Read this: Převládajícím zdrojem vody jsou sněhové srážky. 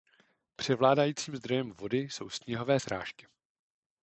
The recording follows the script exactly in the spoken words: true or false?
true